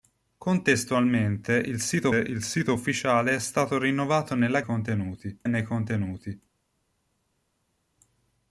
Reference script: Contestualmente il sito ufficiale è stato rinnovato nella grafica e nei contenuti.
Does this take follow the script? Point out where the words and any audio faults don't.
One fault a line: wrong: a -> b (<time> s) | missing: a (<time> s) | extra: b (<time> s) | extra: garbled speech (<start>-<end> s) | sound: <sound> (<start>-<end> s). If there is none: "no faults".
extra: il sito (2.1 s)
wrong: grafica -> contenuti (4.6 s)